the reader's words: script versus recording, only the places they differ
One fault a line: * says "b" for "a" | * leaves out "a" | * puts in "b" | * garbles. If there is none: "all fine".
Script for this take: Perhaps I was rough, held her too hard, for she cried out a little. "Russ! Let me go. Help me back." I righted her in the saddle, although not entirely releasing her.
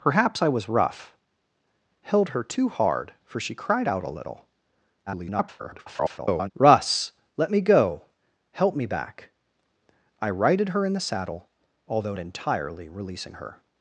* garbles
* leaves out "not"